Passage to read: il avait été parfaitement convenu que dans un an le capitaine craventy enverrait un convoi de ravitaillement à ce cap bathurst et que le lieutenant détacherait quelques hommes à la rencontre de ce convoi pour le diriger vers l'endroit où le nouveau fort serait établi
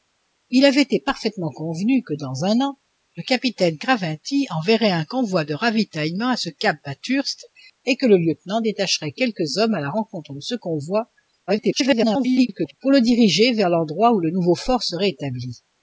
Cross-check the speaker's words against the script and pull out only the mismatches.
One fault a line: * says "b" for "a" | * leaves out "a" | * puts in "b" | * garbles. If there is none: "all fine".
* garbles